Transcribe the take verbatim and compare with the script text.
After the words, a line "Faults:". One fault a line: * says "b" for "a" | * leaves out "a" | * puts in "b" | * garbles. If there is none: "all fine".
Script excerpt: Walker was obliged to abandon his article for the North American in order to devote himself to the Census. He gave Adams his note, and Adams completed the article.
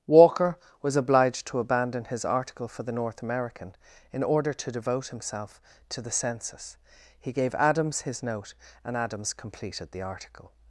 Walker was obliged to abandon his article for the North American in order to devote himself to the Census. He gave Adams his note, and Adams completed the article.
Faults:
all fine